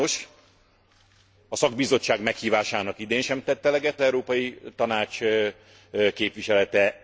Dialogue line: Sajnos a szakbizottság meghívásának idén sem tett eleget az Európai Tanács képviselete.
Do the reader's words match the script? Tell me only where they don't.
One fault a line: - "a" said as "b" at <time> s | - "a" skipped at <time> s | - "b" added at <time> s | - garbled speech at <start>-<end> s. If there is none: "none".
- "az" skipped at 4.0 s